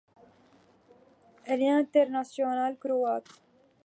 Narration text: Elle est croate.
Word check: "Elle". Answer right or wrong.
right